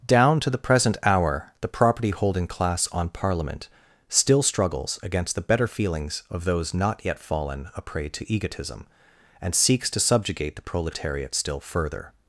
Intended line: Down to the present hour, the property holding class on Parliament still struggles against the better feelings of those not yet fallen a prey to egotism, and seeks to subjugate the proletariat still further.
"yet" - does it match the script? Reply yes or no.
yes